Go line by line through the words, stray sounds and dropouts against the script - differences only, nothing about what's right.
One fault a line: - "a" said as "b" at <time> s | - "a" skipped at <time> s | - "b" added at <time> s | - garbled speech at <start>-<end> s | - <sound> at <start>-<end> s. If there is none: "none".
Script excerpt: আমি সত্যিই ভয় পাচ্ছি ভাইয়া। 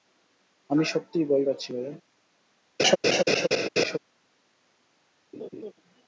- laugh at 2.8-4.0 s
- laugh at 5.3-5.7 s